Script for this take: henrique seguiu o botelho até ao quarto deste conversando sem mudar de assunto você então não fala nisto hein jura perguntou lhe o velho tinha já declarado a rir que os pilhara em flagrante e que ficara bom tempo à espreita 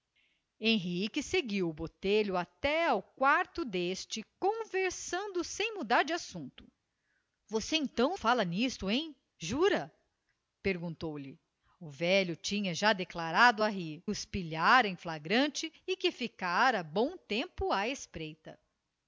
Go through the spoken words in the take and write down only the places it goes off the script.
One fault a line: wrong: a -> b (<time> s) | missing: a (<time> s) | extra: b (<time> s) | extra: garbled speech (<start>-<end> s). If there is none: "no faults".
missing: não (8.2 s)
missing: que (14.0 s)